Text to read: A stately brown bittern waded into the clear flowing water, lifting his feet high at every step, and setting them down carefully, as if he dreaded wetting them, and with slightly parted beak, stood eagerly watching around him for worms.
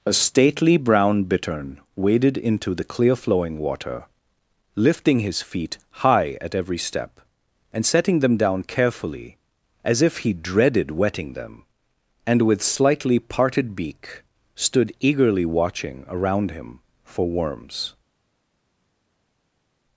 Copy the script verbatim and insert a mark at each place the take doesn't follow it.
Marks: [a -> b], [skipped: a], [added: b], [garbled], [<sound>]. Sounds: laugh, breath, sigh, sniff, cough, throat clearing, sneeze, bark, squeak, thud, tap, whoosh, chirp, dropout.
A stately brown bittern waded into the clear flowing water, lifting his feet high at every step, and setting them down carefully, as if he dreaded wetting them, and with slightly parted beak, stood eagerly watching around him for worms.